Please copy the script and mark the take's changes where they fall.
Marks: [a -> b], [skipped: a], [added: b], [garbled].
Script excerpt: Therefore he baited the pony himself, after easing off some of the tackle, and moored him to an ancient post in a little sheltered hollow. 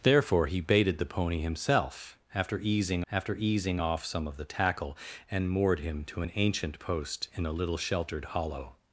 Therefore he baited the pony himself, after easing [added: after easing] off some of the tackle, and moored him to an ancient post in a little sheltered hollow.